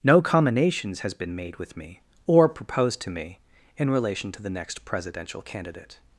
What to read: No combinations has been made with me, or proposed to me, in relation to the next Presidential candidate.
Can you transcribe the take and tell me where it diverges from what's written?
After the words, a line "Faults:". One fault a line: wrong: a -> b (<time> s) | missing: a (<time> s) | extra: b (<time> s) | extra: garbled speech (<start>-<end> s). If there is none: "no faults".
No combinations has been made with me, or proposed to me, in relation to the next Presidential candidate.
Faults:
no faults